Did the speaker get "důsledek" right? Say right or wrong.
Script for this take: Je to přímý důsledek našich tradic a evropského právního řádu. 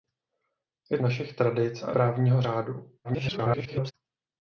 wrong